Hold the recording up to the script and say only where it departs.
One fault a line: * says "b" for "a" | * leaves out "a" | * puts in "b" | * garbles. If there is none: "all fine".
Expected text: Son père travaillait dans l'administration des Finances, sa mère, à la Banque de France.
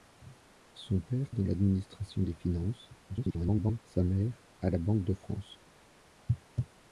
* leaves out "travaillait"
* garbles